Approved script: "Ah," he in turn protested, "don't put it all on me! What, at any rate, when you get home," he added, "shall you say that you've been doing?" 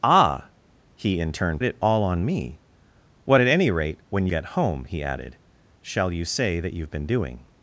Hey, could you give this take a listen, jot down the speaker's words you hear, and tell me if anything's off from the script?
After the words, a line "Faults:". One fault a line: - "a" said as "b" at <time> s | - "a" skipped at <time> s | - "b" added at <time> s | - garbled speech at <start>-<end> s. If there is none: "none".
"Ah," he in turn it all on me! What, at any rate, when get home," he added, "shall you say that you've been doing?"
Faults:
- "protested don't put" skipped at 1.6 s
- "you" skipped at 4.3 s